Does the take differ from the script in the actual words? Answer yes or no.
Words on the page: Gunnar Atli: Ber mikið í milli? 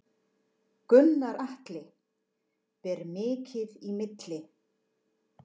no